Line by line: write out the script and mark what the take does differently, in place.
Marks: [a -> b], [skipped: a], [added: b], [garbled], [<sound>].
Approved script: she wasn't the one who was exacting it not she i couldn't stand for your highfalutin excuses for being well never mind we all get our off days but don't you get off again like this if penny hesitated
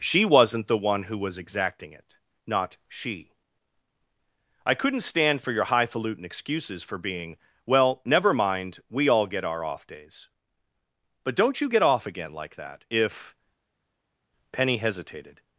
she wasn't the one who was exacting it not she i couldn't stand for your highfalutin excuses for being well never mind we all get our off days but don't you get off again like [this -> that] if penny hesitated